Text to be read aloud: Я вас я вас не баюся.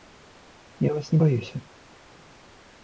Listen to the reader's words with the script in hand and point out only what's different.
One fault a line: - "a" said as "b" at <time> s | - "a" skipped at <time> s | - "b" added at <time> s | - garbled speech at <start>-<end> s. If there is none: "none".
- "я вас" skipped at 1.1 s